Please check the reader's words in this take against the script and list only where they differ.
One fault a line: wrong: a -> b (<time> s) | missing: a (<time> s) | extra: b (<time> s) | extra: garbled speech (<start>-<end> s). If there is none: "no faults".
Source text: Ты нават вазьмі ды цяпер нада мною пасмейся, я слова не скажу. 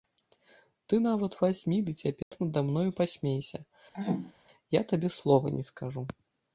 extra: табе (4.9 s)